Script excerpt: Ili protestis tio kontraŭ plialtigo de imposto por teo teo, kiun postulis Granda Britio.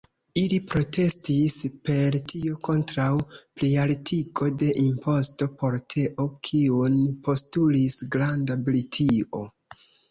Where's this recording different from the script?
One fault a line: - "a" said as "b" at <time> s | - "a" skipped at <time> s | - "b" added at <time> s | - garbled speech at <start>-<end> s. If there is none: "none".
- "per" added at 1.9 s
- "teo" skipped at 6.3 s